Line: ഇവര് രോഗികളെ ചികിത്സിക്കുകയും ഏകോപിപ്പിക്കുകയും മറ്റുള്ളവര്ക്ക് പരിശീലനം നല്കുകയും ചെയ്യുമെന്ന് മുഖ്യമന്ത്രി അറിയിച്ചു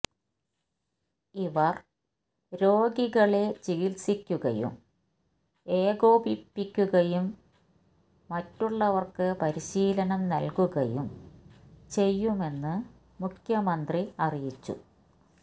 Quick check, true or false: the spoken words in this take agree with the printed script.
true